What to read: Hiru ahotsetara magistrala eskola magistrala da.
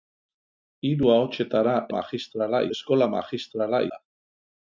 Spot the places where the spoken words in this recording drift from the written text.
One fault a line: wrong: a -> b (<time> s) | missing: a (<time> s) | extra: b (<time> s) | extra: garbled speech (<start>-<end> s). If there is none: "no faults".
no faults